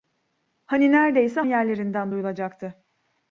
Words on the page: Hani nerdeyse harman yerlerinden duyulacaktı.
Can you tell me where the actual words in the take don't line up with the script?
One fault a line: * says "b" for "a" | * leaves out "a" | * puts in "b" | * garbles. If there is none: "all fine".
* leaves out "harman"